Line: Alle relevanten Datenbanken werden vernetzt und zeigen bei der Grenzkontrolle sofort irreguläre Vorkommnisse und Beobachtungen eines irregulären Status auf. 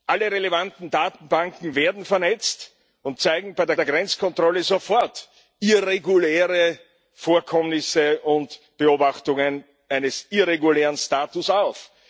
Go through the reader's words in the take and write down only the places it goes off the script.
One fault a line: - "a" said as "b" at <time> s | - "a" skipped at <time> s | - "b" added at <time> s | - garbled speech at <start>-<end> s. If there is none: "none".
- "der" added at 3.8 s